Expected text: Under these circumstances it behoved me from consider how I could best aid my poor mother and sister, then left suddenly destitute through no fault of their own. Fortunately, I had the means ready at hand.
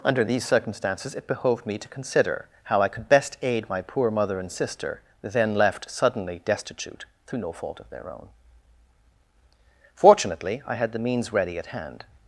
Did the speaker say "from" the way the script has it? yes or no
no